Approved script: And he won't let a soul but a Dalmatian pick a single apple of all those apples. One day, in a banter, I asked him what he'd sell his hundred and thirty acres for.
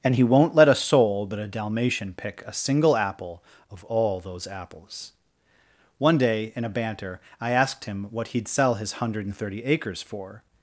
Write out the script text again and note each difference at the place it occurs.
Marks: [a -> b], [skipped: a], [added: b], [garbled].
And he won't let a soul but a Dalmatian pick a single apple of all those apples. One day, in a banter, I asked him what he'd sell his hundred and thirty acres for.